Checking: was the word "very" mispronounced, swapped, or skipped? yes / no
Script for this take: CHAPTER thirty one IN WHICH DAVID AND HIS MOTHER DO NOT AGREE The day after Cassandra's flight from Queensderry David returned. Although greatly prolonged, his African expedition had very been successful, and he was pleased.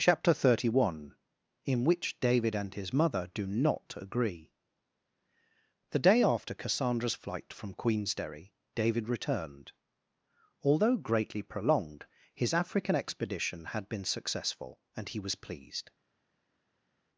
yes